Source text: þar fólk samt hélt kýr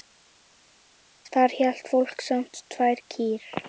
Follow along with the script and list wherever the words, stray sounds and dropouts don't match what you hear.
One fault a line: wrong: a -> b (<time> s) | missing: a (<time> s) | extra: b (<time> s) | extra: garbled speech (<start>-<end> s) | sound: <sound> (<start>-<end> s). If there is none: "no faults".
extra: hélt (1.6 s)
wrong: hélt -> tvær (2.8 s)